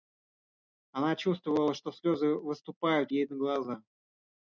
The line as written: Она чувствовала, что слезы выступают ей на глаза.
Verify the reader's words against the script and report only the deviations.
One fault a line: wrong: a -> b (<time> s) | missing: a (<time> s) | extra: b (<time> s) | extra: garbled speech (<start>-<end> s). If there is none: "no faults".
no faults